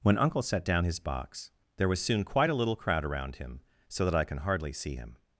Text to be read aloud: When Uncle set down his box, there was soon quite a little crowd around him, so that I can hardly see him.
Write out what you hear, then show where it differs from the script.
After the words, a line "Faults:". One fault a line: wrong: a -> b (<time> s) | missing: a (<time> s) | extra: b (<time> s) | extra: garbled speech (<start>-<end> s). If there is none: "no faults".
When Uncle set down his box, there was soon quite a little crowd around him, so that I can hardly see him.
Faults:
no faults